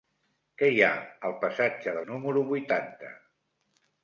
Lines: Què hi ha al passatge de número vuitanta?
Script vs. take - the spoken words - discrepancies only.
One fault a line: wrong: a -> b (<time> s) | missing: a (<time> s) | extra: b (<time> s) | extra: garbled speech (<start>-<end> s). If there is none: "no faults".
no faults